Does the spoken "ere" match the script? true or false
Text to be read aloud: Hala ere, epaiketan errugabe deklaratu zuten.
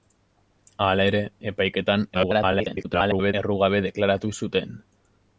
true